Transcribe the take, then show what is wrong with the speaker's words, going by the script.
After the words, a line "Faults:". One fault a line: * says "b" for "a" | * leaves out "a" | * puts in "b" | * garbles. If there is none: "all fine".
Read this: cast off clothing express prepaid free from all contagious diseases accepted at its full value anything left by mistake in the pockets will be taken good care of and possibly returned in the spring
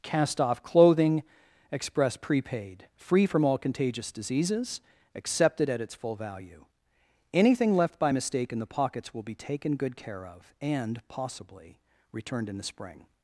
cast off clothing express prepaid free from all contagious diseases accepted at its full value anything left by mistake in the pockets will be taken good care of and possibly returned in the spring
Faults:
all fine